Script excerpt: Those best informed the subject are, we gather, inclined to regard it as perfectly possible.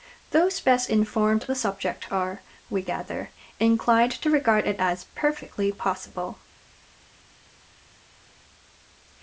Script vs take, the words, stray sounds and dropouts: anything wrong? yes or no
no